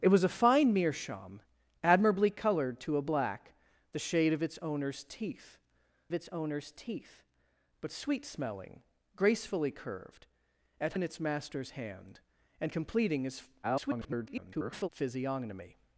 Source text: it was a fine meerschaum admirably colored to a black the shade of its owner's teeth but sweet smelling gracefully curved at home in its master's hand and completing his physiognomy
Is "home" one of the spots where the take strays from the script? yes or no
yes